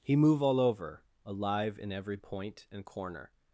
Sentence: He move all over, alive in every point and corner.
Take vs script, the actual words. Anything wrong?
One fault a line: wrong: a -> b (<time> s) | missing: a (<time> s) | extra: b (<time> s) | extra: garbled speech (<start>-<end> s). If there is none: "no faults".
no faults